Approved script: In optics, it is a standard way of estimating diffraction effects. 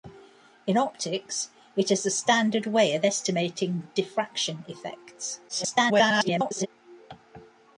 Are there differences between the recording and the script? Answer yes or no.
yes